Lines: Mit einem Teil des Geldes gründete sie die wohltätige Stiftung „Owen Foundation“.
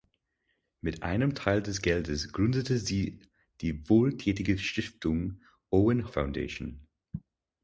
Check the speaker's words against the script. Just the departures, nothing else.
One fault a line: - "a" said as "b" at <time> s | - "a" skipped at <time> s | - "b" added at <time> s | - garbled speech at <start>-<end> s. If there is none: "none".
none